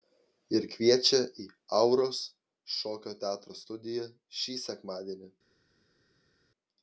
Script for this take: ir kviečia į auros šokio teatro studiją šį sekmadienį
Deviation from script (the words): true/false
false